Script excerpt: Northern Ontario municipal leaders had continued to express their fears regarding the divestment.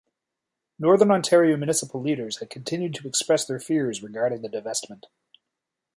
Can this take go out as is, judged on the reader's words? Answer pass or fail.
pass